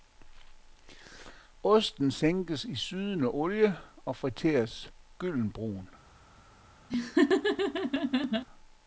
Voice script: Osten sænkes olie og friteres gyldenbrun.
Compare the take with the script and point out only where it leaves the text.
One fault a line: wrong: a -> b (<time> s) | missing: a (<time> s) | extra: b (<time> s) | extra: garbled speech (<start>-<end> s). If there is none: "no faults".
extra: i sydende (2.6 s)